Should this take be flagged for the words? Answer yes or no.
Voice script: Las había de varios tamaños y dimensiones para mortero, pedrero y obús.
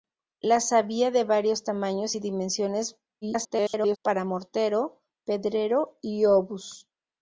yes